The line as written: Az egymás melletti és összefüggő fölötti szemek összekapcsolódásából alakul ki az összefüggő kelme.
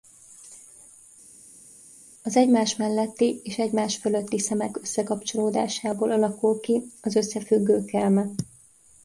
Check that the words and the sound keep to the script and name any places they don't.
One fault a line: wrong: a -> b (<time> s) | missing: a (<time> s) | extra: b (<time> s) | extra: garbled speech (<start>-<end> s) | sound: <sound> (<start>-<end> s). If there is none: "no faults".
wrong: összefüggő -> egymás (3.6 s)